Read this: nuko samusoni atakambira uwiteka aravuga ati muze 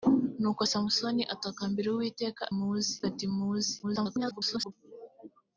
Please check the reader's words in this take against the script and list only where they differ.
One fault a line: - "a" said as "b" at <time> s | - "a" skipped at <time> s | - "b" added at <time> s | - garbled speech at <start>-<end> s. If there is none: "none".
- "aravuga" said as "muze" at 2.6 s
- garbled speech at 3.8-4.7 s